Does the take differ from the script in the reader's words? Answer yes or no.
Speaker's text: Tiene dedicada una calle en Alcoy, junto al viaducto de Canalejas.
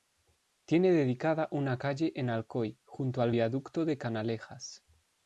no